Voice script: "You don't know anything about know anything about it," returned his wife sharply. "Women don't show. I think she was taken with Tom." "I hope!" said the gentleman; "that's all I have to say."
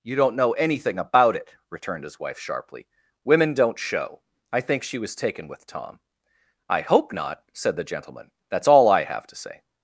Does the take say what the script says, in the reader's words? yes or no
no